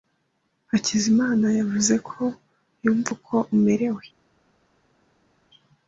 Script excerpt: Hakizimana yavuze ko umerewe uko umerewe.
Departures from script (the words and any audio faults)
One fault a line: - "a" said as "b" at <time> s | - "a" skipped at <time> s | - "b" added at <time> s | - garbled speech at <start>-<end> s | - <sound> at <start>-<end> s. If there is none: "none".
- "umerewe" said as "yumva" at 2.8 s